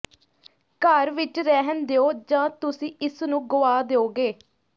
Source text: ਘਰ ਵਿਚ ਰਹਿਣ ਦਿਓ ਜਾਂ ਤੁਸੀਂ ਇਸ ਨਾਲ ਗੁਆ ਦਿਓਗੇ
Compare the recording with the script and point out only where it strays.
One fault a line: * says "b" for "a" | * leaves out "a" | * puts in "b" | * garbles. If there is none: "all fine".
* says "ਨੂੰ" for "ਨਾਲ"